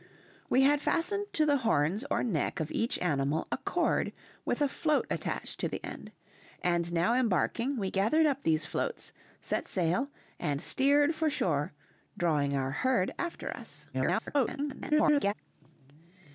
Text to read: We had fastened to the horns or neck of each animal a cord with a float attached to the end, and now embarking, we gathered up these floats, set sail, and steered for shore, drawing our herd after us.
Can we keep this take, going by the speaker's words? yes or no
no